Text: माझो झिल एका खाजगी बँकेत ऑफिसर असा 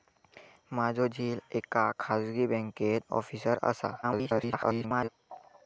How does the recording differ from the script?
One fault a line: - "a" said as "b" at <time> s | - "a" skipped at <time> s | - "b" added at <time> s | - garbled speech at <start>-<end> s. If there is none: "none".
- garbled speech at 4.0-5.1 s